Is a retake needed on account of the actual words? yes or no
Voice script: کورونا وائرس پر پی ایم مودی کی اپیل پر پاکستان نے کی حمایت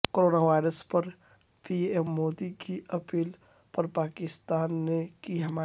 no